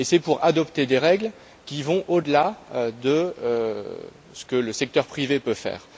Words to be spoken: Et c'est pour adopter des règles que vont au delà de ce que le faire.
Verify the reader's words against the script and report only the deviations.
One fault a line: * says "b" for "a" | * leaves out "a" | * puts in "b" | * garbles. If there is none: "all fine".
* says "qui" for "que"
* puts in "secteur privé peut"